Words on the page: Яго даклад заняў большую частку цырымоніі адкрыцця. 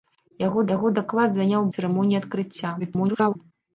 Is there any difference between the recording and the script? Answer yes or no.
yes